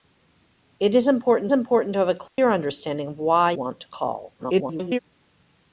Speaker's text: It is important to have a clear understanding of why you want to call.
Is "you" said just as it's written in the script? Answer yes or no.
no